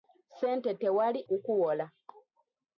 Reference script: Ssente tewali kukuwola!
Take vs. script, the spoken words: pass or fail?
pass